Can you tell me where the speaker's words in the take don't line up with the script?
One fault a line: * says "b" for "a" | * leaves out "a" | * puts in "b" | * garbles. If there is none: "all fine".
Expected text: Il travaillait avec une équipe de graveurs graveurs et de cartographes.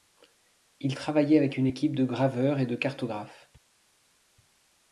* leaves out "graveurs"